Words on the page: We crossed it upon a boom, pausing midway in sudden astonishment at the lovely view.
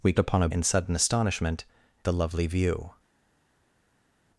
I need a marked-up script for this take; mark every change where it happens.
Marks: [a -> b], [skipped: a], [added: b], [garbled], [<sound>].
We [skipped: crossed] it upon a [skipped: boom, pausing midway] in sudden astonishment [skipped: at] the lovely view.